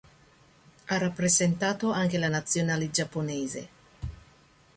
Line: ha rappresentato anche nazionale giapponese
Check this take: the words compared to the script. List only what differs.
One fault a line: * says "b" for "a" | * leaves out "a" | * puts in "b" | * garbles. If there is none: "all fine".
* puts in "la"